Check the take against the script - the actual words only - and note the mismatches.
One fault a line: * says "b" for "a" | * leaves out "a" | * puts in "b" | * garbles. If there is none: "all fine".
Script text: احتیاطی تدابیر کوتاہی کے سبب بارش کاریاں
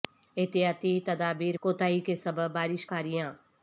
all fine